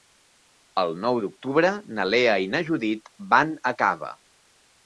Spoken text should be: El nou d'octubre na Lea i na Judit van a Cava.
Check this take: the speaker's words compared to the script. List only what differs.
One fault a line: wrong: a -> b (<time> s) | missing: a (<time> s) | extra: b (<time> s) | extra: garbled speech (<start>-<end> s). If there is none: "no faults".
no faults